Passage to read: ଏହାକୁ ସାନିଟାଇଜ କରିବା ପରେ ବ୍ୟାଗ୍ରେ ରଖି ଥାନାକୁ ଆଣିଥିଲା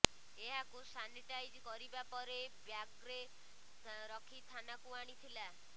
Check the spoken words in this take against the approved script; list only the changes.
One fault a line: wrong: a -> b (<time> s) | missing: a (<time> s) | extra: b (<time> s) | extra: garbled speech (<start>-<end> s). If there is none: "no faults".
no faults